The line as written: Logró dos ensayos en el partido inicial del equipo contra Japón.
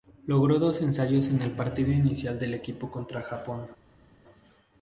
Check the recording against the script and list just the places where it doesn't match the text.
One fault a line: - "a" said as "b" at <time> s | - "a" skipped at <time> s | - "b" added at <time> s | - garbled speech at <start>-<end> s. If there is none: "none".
none